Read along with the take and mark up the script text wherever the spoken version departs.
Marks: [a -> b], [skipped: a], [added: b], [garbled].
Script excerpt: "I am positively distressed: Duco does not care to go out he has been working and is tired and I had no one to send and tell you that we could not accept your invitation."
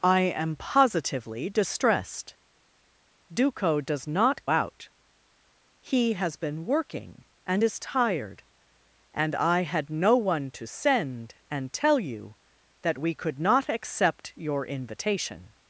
"I am positively distressed: Duco does not [skipped: care to go] out he has been working and is tired and I had no one to send and tell you that we could not accept your invitation."